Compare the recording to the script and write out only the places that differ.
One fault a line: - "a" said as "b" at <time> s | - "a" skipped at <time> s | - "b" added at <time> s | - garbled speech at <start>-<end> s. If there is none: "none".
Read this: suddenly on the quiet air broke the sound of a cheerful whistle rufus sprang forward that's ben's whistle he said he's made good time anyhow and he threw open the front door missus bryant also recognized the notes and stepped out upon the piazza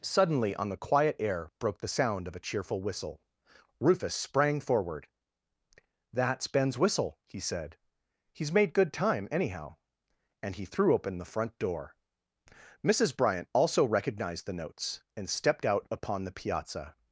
none